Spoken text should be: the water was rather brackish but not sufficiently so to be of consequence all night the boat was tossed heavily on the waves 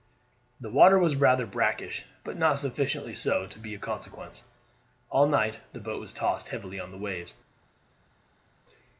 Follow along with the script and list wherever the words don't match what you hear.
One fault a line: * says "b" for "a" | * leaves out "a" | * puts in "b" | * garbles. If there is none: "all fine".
all fine